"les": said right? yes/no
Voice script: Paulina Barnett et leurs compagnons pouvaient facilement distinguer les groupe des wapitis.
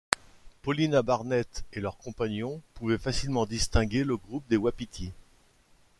no